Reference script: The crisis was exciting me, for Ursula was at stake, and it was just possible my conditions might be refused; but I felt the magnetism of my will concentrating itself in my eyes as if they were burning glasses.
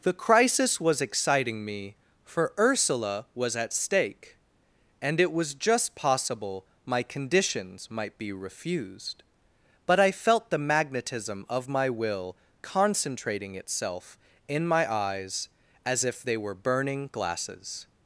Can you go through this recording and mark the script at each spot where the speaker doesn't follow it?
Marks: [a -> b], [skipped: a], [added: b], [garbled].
The crisis was exciting me, for Ursula was at stake, and it was just possible my conditions might be refused; but I felt the magnetism of my will concentrating itself in my eyes as if they were burning glasses.